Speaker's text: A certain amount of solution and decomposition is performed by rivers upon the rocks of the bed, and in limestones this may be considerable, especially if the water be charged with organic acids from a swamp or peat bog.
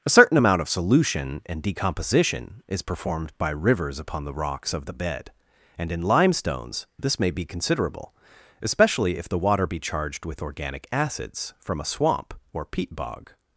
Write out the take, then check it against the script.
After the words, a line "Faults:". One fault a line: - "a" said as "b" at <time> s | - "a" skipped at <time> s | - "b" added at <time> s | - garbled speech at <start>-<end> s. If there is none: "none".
A certain amount of solution and decomposition is performed by rivers upon the rocks of the bed, and in limestones this may be considerable, especially if the water be charged with organic acids from a swamp or peat bog.
Faults:
none